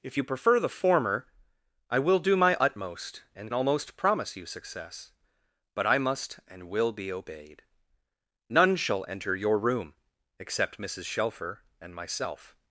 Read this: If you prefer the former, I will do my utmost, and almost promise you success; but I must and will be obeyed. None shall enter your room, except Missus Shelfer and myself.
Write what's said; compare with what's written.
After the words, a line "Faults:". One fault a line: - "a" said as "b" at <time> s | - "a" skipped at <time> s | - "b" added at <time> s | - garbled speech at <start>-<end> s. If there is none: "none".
If you prefer the former, I will do my utmost, and almost promise you success; but I must and will be obeyed. None shall enter your room, except Missus Shelfer and myself.
Faults:
none